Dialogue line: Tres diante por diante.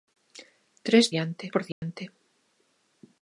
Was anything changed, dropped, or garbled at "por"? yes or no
no